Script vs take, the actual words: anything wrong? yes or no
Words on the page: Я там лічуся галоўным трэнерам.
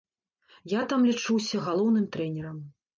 no